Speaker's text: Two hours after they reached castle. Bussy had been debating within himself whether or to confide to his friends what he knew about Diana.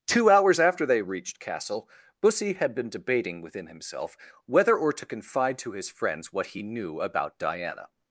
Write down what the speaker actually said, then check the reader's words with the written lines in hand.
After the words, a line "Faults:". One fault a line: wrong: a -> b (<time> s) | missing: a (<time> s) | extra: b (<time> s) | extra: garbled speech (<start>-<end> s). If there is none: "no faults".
Two hours after they reached castle. Bussy had been debating within himself whether or to confide to his friends what he knew about Diana.
Faults:
no faults